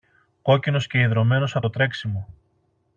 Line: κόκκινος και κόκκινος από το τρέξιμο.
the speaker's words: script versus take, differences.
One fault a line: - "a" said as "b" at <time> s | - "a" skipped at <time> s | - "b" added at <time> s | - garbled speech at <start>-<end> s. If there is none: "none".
- "κόκκινος" said as "ιδρωμένος" at 1.0 s